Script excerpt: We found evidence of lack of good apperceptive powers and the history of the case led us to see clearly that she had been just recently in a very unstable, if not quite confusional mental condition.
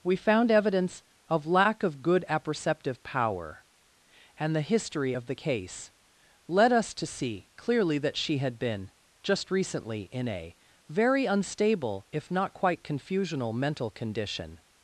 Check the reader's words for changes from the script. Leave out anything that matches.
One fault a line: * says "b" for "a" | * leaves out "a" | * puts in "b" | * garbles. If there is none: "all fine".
* says "power" for "powers"